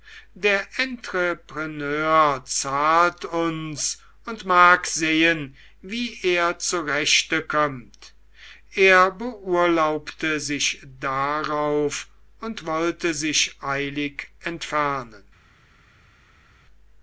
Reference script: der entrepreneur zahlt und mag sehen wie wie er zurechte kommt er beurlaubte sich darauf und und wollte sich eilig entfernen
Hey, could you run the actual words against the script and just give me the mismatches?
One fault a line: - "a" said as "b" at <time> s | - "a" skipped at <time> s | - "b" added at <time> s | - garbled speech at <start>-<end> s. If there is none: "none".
- "uns" added at 3.2 s
- "wie" skipped at 6.2 s
- "und" skipped at 12.6 s